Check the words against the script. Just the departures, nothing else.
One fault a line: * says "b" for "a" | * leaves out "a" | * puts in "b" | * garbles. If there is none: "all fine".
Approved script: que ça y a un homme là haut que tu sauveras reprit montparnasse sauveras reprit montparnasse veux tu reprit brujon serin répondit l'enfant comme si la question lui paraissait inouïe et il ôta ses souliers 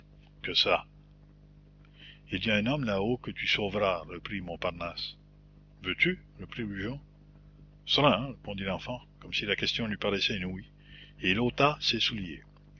* puts in "il"
* leaves out "sauveras reprit montparnasse"